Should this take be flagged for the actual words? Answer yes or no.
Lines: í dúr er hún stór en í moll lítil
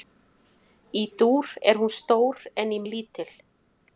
yes